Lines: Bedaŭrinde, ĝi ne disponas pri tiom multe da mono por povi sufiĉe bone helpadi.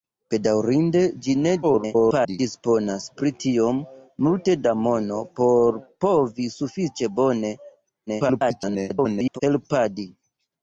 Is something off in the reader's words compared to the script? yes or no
yes